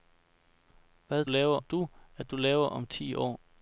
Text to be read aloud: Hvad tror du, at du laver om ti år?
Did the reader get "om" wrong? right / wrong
right